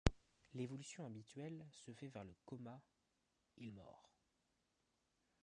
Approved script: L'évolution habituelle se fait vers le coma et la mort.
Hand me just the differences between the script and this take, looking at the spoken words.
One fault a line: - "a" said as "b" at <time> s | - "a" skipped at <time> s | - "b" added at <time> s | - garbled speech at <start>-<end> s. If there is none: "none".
- "la" skipped at 3.7 s